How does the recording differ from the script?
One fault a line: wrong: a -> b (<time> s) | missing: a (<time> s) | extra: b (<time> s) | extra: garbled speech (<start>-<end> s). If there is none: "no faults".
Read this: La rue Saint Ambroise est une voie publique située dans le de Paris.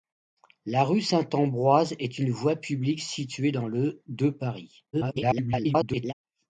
extra: garbled speech (4.9-6.1 s)